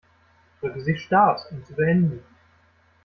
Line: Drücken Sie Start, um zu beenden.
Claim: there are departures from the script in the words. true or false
false